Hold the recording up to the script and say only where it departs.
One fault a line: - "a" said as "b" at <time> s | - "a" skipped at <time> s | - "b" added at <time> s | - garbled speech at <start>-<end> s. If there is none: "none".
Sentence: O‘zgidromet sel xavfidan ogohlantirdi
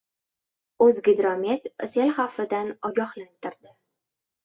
none